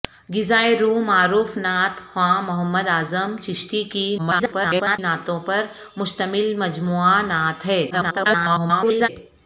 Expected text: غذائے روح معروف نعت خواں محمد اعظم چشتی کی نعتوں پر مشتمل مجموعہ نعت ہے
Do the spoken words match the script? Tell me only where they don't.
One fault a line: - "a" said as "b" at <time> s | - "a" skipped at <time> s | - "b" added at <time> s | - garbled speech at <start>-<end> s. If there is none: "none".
- garbled speech at 4.2-5.0 s
- garbled speech at 7.9-9.1 s